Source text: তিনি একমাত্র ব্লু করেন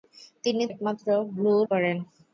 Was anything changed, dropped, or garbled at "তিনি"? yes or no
no